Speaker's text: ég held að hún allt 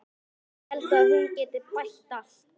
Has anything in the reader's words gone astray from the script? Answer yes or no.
yes